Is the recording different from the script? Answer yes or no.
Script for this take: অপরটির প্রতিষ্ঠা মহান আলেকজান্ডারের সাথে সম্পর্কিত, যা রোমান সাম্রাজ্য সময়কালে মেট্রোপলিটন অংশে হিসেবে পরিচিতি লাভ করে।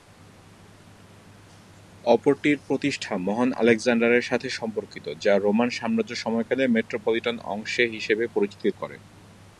yes